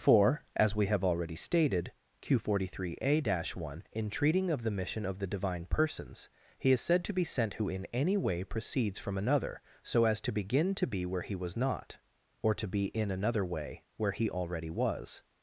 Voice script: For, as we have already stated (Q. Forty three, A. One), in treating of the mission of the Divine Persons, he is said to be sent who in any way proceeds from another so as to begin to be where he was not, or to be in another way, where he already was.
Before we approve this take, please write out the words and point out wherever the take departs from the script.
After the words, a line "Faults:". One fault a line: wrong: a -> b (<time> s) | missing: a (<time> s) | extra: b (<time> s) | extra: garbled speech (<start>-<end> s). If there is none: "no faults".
For, as we have already stated (Q. Forty three, A. One), in treating of the mission of the Divine Persons, he is said to be sent who in any way proceeds from another so as to begin to be where he was not, or to be in another way, where he already was.
Faults:
no faults